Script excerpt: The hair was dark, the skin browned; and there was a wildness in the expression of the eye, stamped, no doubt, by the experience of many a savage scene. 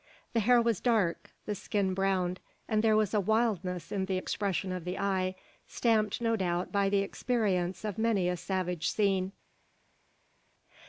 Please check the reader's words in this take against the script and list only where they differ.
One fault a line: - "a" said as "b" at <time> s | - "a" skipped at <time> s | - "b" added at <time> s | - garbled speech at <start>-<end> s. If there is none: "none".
none